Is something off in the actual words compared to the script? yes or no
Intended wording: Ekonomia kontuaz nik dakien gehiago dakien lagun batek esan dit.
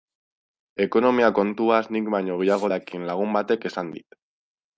yes